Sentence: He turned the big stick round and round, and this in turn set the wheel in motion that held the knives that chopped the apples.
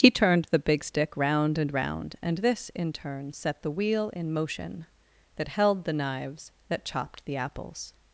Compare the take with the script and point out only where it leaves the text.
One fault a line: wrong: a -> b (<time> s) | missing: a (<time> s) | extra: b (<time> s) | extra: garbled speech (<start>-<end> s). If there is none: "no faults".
no faults